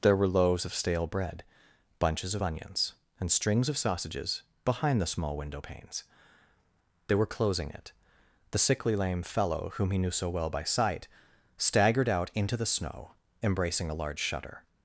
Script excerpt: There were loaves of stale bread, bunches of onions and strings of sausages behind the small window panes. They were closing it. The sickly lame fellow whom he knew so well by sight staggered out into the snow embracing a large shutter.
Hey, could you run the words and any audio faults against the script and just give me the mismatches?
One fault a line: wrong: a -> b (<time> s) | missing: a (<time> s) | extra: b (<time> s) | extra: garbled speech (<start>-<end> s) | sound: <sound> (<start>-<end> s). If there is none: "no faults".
no faults